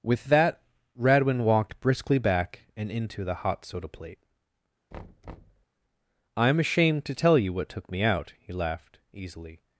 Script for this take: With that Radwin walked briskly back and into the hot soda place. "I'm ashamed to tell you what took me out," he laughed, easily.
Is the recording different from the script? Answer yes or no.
yes